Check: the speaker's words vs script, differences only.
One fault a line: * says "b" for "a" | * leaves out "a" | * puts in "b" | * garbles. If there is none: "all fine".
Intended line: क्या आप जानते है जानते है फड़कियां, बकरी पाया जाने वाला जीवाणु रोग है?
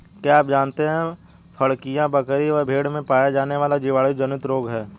* says "फड़कियां बकरी व भेड़ में" for "जानते है फड़कियां बकरी"
* puts in "जनित"